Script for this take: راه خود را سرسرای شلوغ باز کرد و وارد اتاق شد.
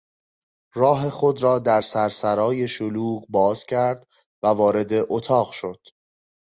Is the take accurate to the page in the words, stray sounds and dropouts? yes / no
no